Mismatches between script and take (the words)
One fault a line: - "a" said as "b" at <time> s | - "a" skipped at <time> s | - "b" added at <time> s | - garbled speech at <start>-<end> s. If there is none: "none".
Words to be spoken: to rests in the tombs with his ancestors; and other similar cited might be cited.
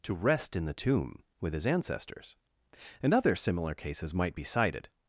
- "rests" said as "rest" at 0.1 s
- "tombs" said as "tomb" at 0.7 s
- "cited" said as "cases" at 3.7 s